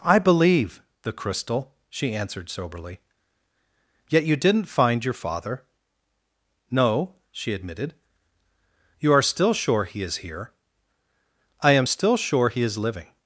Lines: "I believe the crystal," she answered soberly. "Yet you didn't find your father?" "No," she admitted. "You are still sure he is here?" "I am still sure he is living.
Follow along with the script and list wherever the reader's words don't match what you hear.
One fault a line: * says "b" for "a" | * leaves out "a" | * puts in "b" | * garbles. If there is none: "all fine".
all fine